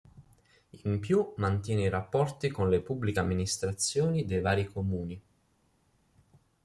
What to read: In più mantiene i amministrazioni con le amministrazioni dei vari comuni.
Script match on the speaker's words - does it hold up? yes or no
no